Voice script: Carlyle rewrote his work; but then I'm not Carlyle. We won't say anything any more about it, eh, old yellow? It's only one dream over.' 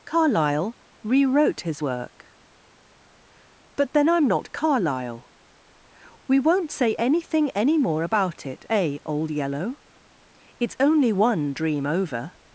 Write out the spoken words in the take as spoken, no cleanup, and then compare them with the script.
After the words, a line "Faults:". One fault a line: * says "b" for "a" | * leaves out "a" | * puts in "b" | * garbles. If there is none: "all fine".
Carlyle rewrote his work; but then I'm not Carlyle. We won't say anything any more about it, eh, old yellow? It's only one dream over.'
Faults:
all fine